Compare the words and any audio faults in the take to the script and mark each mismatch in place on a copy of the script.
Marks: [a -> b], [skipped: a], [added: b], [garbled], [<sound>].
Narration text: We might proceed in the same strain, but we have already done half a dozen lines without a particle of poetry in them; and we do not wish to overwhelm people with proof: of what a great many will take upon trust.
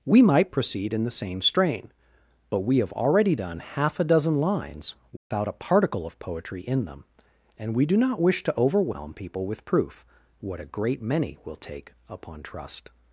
We might proceed in the same strain, but we have already done half a dozen lines without [dropout] a particle of poetry in them; and we do not wish to overwhelm people with proof: [skipped: of] what a great many will take upon trust.